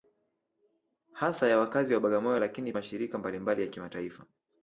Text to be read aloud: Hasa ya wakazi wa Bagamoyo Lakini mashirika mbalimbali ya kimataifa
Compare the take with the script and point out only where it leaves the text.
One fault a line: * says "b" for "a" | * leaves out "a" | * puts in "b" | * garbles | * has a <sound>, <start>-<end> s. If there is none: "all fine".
all fine